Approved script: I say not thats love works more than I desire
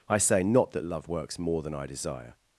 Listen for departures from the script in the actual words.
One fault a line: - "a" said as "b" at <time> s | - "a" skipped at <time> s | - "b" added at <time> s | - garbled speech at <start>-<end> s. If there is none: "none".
- "thats" said as "that" at 0.7 s